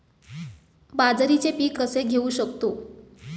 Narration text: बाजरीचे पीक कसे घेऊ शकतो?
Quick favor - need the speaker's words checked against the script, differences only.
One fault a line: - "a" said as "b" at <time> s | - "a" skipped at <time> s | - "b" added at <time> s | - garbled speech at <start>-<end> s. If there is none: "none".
none